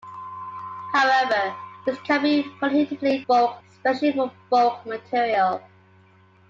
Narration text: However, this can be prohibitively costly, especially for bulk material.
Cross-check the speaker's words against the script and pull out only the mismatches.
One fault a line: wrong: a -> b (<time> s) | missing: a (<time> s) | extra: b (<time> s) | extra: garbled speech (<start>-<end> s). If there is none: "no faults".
wrong: costly -> bulk (3.3 s)